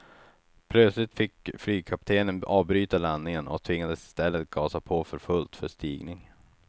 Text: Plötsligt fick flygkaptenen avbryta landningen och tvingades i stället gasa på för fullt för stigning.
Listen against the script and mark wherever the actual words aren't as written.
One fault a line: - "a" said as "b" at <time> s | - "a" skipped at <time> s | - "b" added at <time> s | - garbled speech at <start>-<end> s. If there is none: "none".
none